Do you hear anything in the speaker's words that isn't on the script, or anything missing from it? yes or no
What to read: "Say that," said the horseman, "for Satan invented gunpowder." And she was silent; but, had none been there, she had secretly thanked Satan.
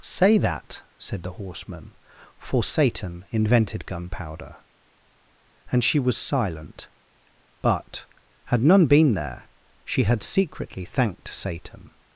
no